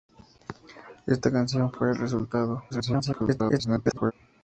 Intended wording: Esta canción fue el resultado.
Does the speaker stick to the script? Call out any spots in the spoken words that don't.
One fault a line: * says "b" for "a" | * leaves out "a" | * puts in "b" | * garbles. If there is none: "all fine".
* garbles